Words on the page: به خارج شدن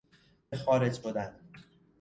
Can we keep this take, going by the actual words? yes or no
yes